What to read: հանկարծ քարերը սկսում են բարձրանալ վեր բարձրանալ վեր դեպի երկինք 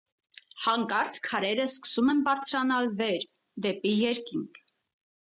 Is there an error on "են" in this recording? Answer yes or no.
no